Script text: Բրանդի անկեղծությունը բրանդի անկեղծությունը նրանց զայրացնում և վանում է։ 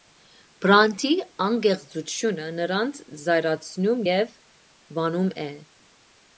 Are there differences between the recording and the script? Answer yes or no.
yes